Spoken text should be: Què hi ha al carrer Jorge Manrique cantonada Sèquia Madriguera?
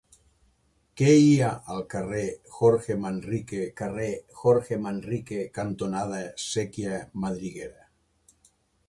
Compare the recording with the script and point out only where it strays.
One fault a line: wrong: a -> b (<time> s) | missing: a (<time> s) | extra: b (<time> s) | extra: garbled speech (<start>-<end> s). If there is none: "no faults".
extra: carrer Jorge Manrique (3.8 s)